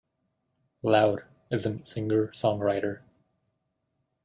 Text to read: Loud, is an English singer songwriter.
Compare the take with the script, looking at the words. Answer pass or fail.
fail